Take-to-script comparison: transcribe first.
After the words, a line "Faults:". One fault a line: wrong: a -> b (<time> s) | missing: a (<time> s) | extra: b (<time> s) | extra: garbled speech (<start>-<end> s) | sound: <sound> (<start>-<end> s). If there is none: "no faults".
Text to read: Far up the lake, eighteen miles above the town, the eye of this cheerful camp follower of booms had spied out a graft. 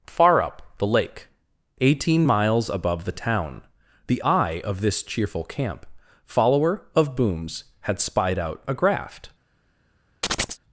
Far up the lake, eighteen miles above the town, the eye of this cheerful camp follower of booms had spied out a graft.
Faults:
sound: chirp (10.2-10.6 s)